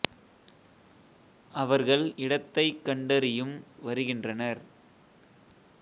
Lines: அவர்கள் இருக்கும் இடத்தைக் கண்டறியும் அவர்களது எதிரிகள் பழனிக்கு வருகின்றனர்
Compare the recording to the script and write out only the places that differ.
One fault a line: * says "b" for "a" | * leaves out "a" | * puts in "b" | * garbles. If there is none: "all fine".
* leaves out "இருக்கும்"
* leaves out "அவர்களது எதிரிகள் பழனிக்கு"